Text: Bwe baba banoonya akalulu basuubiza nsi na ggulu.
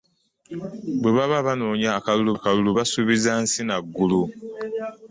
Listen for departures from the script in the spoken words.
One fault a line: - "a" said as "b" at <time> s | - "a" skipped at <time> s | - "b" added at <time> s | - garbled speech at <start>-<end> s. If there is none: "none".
- "akalulu" added at 2.4 s